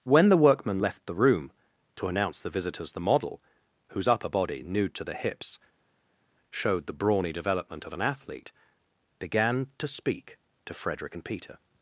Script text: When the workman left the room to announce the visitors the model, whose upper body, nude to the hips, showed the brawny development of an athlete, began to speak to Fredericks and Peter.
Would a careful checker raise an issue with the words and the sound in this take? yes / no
yes